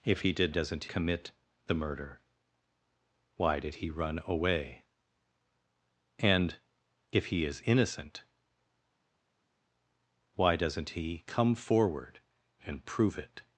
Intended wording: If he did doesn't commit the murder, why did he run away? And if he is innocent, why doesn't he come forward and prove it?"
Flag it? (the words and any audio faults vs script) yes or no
no